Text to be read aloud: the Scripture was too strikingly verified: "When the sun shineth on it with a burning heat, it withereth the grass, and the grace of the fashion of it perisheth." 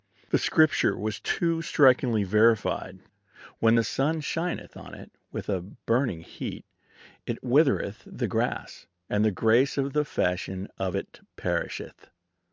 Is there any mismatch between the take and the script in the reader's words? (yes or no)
no